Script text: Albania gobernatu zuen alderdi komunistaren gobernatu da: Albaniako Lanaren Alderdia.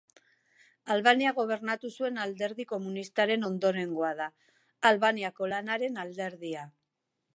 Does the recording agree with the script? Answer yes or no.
no